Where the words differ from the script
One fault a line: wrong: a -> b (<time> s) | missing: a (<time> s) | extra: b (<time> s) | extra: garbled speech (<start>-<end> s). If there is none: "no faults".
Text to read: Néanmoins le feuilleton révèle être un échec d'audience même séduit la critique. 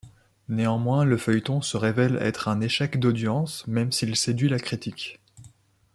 extra: se (1.6 s)
extra: s'il (3.9 s)